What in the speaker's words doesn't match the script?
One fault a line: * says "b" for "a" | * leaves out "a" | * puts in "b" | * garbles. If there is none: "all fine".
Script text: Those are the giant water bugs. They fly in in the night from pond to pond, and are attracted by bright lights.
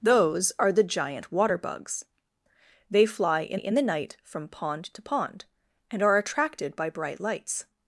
all fine